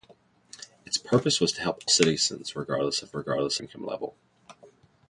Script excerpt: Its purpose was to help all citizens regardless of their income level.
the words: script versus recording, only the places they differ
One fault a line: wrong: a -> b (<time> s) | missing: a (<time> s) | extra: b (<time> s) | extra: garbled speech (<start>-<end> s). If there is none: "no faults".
missing: all (1.8 s)
wrong: their -> regardless (3.1 s)